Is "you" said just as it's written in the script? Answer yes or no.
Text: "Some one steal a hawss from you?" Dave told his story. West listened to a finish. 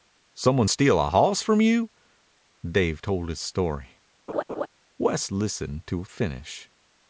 yes